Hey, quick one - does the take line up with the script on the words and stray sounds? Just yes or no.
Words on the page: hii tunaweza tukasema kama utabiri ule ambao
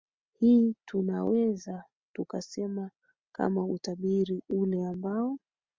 yes